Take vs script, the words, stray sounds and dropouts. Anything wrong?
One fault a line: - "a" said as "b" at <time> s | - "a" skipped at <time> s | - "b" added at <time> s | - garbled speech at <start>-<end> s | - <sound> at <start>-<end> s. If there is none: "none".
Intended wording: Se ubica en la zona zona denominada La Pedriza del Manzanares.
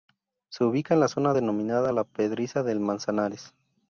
- "zona" skipped at 1.4 s